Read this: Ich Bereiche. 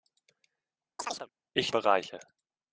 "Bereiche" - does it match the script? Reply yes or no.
yes